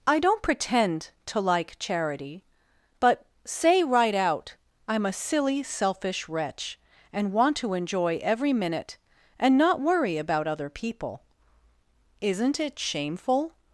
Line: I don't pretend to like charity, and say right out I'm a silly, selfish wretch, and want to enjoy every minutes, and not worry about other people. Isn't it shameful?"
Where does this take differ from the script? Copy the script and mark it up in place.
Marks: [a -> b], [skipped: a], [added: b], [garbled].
I don't pretend to like charity, [and -> but] say right out I'm a silly, selfish wretch, and want to enjoy every [minutes, -> minute] and not worry about other people. Isn't it shameful?"